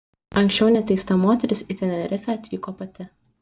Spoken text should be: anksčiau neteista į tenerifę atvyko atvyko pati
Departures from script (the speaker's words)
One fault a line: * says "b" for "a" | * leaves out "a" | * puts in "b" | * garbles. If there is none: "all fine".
* puts in "moteris"
* leaves out "atvyko"